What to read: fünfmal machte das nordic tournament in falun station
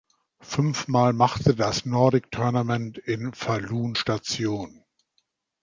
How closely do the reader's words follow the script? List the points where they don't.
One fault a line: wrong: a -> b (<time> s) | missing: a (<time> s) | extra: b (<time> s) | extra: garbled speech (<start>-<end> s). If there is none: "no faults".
no faults